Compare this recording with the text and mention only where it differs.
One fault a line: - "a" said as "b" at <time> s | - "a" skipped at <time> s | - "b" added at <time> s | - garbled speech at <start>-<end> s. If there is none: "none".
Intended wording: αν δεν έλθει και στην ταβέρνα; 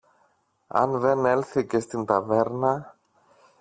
none